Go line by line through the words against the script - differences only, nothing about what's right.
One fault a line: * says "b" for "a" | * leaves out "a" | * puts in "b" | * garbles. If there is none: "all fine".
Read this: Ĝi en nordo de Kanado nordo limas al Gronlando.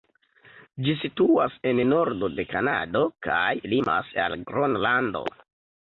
* puts in "situas"
* says "kaj" for "nordo"